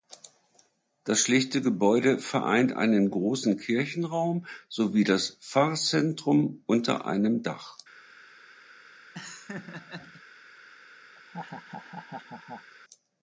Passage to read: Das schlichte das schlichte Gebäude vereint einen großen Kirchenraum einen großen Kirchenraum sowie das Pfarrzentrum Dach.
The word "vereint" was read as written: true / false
true